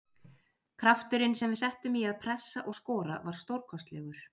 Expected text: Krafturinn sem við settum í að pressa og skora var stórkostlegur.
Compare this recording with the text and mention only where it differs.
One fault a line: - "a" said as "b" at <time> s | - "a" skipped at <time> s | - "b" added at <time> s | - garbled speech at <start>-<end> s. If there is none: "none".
none